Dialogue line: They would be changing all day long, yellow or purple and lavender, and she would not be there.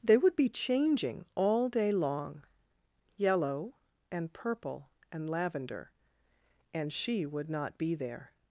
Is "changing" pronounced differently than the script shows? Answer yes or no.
no